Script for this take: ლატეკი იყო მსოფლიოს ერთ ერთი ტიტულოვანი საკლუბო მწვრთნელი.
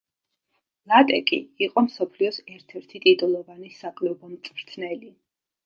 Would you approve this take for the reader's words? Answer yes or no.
yes